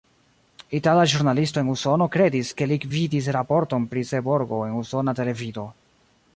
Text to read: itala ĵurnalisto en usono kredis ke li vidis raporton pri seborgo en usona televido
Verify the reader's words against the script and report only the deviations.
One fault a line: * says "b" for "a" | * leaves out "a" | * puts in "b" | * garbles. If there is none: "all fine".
all fine